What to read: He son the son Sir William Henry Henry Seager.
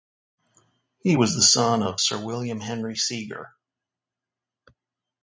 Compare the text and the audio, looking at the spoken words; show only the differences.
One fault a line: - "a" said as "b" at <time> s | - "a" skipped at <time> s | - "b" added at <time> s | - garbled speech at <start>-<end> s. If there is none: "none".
- "son" said as "was" at 1.1 s
- "of" added at 1.8 s
- "Henry" skipped at 3.0 s